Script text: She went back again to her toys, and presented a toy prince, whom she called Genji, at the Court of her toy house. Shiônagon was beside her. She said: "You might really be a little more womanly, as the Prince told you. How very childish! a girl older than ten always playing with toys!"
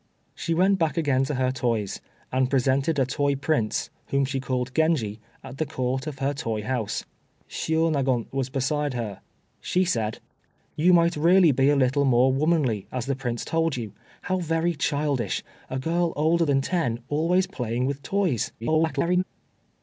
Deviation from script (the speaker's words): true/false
true